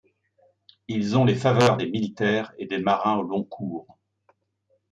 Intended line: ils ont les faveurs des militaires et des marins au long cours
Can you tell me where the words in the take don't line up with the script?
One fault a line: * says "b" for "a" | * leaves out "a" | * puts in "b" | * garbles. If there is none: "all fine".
all fine